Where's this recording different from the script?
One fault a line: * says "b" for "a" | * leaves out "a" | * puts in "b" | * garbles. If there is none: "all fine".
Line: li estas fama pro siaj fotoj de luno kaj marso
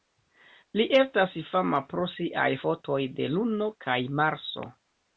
all fine